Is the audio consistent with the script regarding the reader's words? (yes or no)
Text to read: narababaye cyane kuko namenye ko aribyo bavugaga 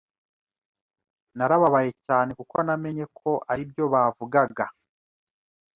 yes